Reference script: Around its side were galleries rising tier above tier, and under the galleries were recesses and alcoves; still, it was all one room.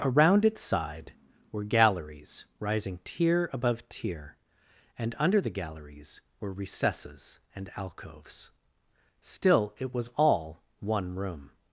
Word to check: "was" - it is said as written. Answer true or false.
true